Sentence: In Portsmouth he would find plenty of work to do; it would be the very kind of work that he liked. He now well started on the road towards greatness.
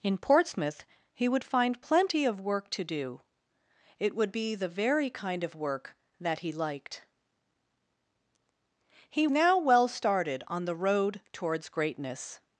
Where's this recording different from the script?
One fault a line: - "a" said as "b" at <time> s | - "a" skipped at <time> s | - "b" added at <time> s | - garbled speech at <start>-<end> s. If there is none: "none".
none